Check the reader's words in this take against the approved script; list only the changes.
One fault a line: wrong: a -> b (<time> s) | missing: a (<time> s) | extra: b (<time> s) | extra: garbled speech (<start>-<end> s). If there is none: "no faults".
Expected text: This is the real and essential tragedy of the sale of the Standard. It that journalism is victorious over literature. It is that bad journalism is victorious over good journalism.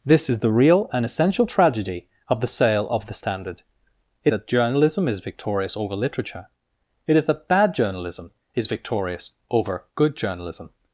no faults